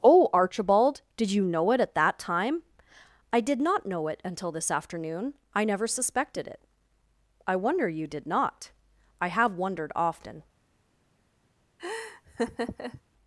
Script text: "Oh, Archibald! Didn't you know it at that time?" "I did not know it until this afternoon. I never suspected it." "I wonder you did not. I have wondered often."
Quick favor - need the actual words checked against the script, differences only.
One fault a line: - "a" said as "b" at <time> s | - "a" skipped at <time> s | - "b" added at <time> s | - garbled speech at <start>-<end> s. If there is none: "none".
- "Didn't" said as "Did" at 1.2 s